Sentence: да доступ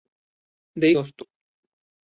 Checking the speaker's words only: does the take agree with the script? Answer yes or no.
yes